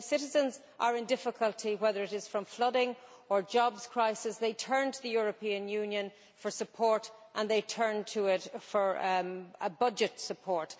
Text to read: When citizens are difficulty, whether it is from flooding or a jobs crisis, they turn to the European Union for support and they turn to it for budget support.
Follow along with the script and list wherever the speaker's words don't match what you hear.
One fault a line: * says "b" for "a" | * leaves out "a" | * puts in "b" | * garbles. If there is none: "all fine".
* puts in "in"